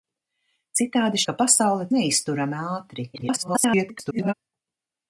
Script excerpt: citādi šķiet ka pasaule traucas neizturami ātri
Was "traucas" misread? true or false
true